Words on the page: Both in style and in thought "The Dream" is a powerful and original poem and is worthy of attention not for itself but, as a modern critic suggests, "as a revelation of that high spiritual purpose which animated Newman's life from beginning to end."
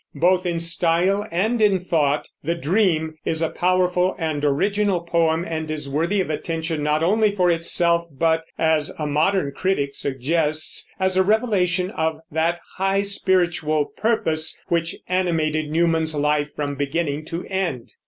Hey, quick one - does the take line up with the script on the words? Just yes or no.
no